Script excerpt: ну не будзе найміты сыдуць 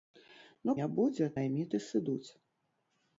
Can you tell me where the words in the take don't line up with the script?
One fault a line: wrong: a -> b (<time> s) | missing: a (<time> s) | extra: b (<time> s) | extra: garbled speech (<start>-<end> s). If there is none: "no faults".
no faults